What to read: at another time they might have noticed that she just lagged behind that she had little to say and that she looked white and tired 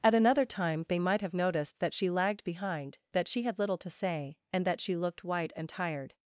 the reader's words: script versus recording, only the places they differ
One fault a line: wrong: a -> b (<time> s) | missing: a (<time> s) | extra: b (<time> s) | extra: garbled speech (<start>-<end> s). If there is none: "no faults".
missing: just (2.1 s)